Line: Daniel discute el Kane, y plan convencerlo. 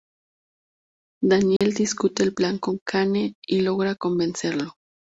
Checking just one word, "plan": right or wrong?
wrong